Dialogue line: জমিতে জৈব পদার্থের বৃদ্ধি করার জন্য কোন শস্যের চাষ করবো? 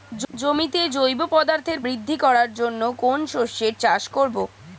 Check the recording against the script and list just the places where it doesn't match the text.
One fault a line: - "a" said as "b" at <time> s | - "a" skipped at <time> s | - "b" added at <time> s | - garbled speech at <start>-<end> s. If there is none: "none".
none